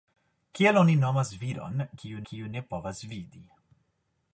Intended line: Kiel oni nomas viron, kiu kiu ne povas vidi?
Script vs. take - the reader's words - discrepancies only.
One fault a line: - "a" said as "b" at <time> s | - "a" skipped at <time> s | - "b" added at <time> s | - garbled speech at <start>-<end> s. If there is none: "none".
none